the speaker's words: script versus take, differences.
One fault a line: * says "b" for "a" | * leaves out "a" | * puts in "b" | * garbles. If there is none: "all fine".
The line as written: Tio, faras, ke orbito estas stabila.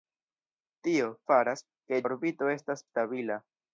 all fine